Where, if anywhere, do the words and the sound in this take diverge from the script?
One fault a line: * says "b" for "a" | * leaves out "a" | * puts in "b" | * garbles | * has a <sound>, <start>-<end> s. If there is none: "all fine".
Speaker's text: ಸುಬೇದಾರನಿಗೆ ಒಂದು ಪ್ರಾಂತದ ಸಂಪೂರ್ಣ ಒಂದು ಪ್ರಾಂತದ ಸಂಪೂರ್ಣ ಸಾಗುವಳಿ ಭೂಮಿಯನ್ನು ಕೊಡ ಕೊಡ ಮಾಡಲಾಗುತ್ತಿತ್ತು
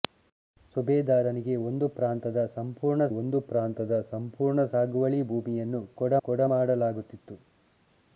all fine